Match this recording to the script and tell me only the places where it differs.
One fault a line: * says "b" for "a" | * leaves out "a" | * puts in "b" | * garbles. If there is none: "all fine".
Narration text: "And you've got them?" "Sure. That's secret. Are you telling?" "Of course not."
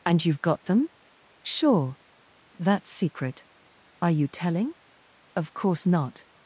all fine